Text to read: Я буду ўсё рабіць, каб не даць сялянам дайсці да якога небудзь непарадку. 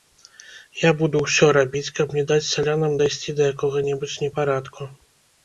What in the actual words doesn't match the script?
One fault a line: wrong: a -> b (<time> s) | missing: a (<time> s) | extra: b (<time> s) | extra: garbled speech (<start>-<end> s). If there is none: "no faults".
no faults